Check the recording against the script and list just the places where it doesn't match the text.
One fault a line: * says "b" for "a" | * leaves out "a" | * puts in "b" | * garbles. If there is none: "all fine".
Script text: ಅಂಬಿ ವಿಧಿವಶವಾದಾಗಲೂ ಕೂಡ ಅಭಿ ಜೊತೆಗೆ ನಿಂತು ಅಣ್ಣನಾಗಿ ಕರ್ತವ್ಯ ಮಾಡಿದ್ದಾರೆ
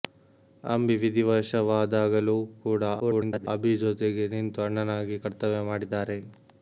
* garbles